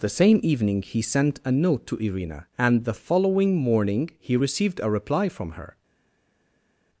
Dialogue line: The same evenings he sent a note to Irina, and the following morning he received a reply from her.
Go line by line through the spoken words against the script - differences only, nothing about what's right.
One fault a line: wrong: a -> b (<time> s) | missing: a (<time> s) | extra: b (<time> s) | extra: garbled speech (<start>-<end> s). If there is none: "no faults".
wrong: evenings -> evening (0.4 s)